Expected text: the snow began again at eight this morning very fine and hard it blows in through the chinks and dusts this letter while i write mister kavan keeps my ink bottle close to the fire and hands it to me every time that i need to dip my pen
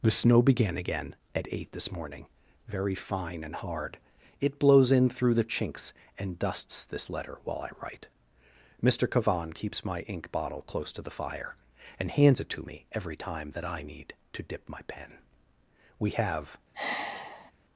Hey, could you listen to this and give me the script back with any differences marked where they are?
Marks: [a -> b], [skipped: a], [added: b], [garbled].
the snow began again at eight this morning very fine and hard it blows in through the chinks and dusts this letter while i write mister kavan keeps my ink bottle close to the fire and hands it to me every time that i need to dip my pen [added: we have]